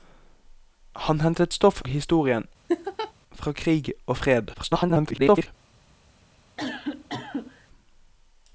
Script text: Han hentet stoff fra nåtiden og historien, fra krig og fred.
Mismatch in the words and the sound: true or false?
true